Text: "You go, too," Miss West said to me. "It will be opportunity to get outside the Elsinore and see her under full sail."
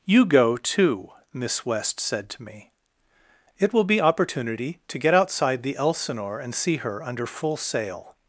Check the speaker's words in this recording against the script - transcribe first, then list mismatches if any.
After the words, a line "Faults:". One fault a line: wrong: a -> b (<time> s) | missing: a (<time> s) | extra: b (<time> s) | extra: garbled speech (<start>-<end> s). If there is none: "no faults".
"You go, too," Miss West said to me. "It will be opportunity to get outside the Elsinore and see her under full sail."
Faults:
no faults